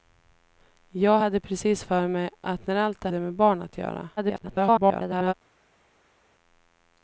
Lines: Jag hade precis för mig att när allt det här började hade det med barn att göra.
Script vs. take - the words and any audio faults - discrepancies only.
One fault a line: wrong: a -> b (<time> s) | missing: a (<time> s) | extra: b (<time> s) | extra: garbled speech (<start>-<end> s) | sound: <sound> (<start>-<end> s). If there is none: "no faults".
missing: här började hade (3.1 s)
extra: garbled speech (4.2-5.3 s)